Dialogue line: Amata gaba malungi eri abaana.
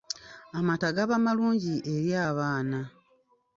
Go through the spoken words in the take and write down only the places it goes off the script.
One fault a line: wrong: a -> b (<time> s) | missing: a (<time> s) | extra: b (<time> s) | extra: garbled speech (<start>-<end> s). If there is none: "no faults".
no faults